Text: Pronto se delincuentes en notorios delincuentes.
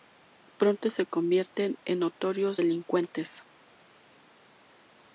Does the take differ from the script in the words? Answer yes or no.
yes